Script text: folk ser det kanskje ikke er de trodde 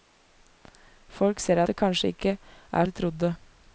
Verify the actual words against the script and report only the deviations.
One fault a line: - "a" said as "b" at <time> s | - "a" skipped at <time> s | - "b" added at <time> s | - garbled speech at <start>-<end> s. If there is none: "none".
none